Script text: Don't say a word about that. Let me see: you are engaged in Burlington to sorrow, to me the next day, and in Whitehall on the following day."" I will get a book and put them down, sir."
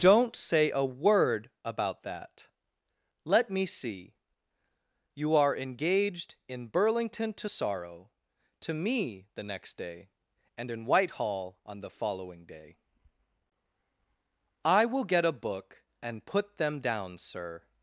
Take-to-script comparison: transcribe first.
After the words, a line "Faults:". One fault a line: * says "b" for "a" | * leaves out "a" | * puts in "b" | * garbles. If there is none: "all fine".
Don't say a word about that. Let me see: you are engaged in Burlington to sorrow, to me the next day, and in Whitehall on the following day."" I will get a book and put them down, sir."
Faults:
all fine